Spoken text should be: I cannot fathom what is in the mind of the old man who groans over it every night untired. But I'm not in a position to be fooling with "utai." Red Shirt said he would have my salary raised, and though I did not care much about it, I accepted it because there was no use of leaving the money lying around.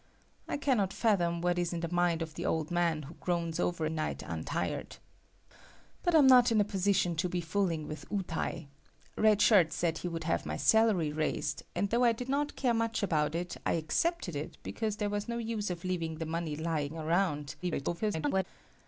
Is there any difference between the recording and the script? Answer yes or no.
yes